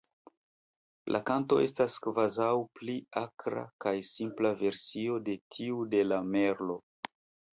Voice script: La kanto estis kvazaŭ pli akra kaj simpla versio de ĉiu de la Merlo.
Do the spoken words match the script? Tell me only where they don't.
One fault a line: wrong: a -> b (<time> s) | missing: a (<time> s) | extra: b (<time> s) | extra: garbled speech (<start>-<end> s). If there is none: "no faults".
wrong: estis -> estas (1.6 s)
wrong: ĉiu -> tiu (5.6 s)